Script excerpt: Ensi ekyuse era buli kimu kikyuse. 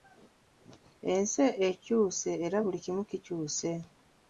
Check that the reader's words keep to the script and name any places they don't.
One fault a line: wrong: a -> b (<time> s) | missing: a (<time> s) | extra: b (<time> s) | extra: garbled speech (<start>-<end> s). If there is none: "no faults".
no faults